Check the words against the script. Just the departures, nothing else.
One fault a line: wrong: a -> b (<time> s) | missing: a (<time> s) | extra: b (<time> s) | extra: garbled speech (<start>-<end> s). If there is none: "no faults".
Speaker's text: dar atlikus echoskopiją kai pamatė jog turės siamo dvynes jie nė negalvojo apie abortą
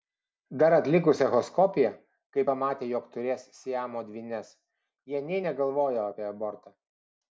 no faults